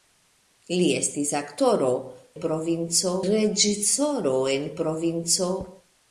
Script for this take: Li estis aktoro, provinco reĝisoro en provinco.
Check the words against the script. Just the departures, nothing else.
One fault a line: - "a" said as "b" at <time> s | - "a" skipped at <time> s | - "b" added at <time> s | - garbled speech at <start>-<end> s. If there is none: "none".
none